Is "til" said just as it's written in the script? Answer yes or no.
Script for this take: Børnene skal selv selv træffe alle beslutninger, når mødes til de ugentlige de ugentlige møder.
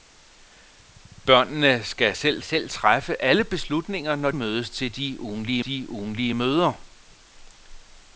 yes